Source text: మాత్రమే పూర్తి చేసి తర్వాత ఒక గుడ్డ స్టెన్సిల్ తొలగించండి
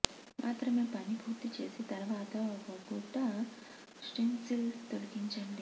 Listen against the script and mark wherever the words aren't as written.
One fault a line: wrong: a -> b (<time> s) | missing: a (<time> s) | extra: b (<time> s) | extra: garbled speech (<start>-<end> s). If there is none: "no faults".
extra: పని (0.9 s)